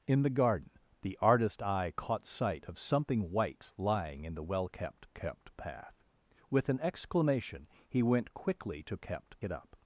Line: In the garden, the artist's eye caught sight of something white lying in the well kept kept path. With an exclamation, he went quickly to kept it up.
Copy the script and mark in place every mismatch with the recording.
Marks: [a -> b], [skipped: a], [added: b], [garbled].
In the garden, the artist's eye caught sight of something white lying in the well kept kept path. With an exclamation, he went quickly to kept it up.